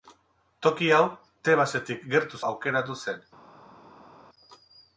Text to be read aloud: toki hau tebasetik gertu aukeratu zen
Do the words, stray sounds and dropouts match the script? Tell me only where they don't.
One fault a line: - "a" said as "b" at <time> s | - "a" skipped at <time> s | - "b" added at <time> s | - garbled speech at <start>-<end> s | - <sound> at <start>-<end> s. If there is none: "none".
none